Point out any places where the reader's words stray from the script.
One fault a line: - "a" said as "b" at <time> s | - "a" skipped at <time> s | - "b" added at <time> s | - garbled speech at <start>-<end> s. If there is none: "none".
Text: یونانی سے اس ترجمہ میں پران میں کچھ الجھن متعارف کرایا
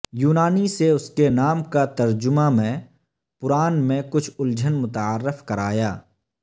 - "کے نام کا" added at 1.1 s